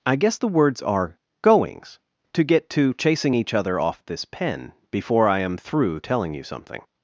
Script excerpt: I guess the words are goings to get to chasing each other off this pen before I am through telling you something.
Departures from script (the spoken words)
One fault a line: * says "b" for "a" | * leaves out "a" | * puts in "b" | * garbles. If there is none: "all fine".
all fine